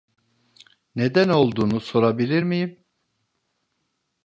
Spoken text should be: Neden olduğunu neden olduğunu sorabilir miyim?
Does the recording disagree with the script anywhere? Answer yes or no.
yes